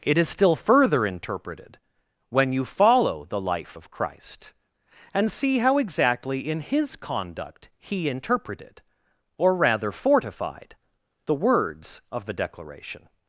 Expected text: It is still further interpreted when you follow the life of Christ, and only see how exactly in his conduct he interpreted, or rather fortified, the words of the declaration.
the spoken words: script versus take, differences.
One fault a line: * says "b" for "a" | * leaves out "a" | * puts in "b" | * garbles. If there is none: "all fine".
* leaves out "only"